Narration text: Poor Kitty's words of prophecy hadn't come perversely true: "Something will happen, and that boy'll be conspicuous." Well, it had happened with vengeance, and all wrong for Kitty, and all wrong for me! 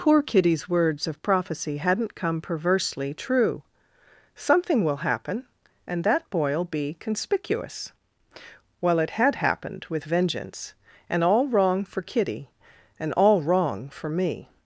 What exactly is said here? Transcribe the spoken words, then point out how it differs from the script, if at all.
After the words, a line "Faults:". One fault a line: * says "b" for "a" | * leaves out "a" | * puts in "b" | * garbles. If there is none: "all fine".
Poor Kitty's words of prophecy hadn't come perversely true: "Something will happen, and that boy'll be conspicuous." Well, it had happened with vengeance, and all wrong for Kitty, and all wrong for me!
Faults:
all fine